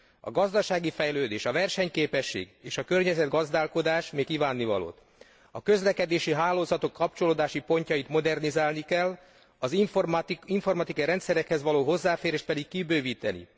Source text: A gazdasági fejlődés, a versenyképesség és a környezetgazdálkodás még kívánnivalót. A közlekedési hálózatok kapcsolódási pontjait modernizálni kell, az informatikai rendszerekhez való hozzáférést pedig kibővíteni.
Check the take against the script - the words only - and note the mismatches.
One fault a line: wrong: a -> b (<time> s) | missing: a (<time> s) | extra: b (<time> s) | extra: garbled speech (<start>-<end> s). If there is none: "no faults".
no faults